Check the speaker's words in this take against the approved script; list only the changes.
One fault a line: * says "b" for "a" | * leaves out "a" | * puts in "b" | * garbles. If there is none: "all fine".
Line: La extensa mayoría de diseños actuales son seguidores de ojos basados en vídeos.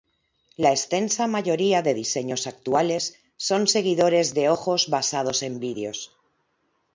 all fine